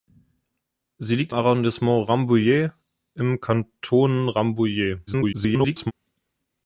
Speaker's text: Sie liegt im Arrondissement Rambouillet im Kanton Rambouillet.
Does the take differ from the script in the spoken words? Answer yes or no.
yes